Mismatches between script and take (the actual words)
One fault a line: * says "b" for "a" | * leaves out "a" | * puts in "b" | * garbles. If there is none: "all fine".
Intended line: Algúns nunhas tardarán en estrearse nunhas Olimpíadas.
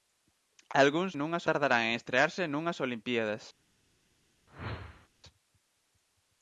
all fine